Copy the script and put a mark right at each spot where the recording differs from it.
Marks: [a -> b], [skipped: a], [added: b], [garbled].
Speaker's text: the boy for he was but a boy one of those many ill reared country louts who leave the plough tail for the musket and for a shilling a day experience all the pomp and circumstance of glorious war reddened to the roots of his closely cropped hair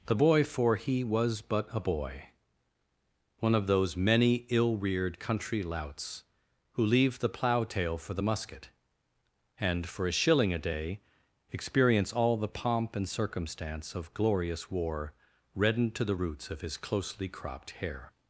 the boy for he was but a boy one of those many ill reared country louts who leave the plough tail for the musket and for a shilling a day experience all the pomp and circumstance of glorious war reddened to the roots of his closely cropped hair